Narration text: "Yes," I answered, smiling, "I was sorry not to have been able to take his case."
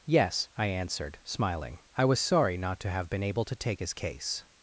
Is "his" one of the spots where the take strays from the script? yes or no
no